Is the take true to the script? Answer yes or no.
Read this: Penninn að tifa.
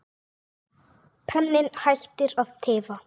no